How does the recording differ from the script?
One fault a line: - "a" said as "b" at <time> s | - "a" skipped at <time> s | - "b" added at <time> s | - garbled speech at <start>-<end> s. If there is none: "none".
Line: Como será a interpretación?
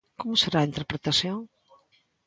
none